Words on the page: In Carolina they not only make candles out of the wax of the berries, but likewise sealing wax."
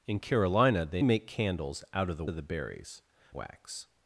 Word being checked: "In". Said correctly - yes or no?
yes